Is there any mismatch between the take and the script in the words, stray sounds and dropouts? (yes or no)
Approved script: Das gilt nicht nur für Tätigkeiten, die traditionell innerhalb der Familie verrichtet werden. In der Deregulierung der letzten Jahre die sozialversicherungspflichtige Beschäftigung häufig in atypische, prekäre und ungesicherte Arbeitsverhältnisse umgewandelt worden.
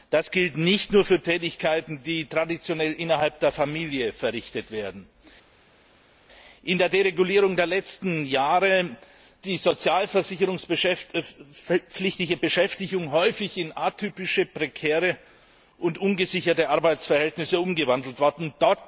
no